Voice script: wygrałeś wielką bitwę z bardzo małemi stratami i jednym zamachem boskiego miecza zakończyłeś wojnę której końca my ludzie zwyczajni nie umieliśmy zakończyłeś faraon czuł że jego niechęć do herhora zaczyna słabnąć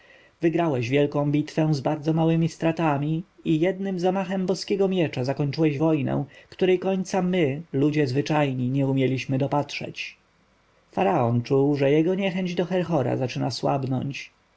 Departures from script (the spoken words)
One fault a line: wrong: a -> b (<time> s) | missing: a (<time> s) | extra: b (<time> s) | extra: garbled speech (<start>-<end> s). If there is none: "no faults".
wrong: zakończyłeś -> dopatrzeć (9.4 s)